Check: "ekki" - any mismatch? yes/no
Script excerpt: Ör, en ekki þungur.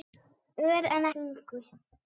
yes